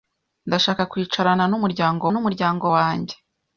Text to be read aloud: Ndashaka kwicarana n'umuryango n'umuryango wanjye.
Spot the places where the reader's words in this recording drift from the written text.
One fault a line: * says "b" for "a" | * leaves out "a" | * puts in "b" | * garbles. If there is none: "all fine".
all fine